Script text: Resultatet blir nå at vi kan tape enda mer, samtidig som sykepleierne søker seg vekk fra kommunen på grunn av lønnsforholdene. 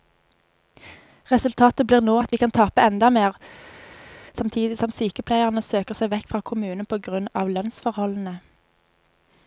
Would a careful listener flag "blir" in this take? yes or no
no